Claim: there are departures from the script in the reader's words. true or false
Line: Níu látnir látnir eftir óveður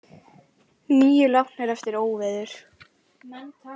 true